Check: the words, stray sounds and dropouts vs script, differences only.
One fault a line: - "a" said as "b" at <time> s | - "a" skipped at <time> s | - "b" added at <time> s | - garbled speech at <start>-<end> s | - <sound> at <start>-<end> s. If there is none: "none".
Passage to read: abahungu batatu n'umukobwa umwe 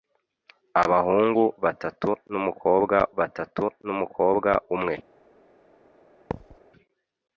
- "batatu n'umukobwa" added at 3.2 s
- thud at 6.3-6.6 s